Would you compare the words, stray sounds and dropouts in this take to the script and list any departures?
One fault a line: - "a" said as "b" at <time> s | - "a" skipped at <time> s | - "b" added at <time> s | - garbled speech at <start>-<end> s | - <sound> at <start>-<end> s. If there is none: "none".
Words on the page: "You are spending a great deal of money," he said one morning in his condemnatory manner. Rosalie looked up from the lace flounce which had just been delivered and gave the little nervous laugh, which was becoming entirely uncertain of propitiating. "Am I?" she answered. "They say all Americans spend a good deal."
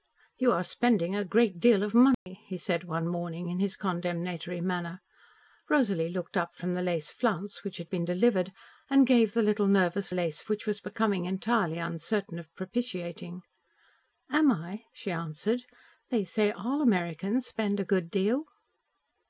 - dropout at 2.1-2.3 s
- "just" skipped at 7.9 s
- "laugh" said as "lace" at 10.1 s